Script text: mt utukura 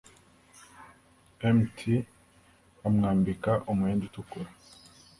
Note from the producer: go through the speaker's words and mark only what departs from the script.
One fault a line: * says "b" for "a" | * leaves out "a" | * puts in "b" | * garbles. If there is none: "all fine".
* puts in "bamwambika umwenda"